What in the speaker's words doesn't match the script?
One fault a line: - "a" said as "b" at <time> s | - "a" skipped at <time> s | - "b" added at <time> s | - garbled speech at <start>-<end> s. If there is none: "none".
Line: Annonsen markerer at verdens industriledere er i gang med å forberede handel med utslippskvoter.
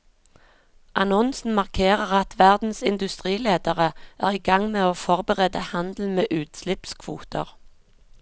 none